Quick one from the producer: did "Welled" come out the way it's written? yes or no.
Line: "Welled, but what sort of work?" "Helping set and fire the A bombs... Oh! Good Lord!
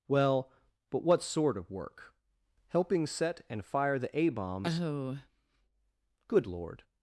no